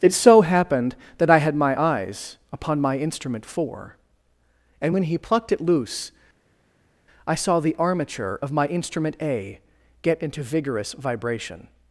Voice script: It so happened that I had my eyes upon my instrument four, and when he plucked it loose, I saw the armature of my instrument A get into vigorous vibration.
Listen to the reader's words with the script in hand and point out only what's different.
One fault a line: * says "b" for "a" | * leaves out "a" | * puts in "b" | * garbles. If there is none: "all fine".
all fine